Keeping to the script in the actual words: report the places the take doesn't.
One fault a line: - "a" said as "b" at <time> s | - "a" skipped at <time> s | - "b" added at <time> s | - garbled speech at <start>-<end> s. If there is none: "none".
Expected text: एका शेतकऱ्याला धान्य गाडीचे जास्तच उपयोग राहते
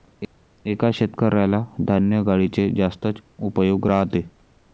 none